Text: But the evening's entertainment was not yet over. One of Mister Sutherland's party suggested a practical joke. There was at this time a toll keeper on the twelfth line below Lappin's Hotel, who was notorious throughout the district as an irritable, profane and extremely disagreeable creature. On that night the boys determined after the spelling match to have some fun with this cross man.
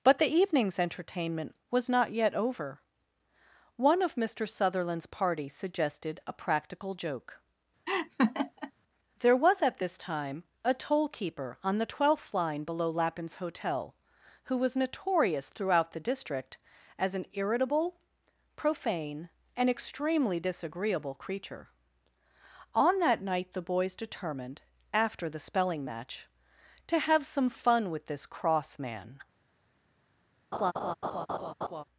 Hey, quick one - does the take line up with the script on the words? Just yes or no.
yes